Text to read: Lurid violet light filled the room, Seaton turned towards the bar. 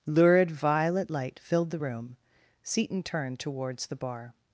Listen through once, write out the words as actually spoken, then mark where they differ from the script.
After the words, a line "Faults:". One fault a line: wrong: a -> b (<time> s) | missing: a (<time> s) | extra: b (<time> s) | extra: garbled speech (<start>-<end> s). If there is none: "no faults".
Lurid violet light filled the room, Seaton turned towards the bar.
Faults:
no faults